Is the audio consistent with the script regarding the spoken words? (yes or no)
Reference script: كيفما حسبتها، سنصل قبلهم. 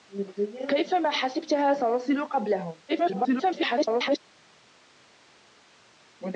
no